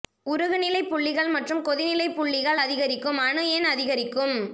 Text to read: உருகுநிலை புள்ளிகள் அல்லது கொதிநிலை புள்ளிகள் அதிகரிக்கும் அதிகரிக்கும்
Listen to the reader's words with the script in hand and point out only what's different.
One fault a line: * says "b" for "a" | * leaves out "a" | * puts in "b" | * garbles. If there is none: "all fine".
* says "மற்றும்" for "அல்லது"
* puts in "அணு எண்"